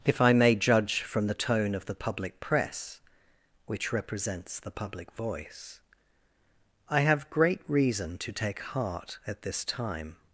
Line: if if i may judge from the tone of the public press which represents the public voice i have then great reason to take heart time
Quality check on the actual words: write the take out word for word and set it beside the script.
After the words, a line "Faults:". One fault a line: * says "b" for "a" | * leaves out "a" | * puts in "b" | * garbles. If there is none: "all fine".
if i may judge from the tone of the public press which represents the public voice i have great reason to take heart at this time
Faults:
* leaves out "if"
* leaves out "then"
* puts in "at this"